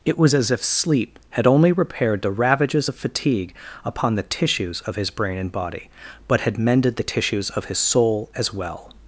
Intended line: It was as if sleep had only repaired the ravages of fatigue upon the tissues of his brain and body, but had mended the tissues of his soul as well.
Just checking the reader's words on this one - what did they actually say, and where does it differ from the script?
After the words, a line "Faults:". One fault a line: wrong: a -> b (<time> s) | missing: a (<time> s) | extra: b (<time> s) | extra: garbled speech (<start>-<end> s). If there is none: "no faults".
It was as if sleep had only repaired the ravages of fatigue upon the tissues of his brain and body, but had mended the tissues of his soul as well.
Faults:
no faults